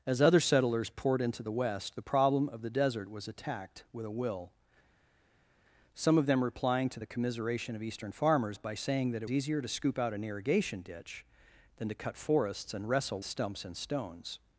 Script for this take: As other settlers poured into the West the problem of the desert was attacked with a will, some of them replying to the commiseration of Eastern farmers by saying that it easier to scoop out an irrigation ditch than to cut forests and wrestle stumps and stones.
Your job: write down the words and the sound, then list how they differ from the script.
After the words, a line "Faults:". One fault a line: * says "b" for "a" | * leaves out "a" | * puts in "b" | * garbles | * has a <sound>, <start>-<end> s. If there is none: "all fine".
As other settlers poured into the West the problem of the desert was attacked with a will, some of them replying to the commiseration of Eastern farmers by saying that it easier to scoop out an irrigation ditch than to cut forests and wrestle stumps and stones.
Faults:
all fine